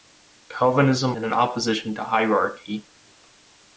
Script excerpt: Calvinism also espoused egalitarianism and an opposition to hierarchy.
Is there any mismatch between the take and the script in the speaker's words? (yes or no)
yes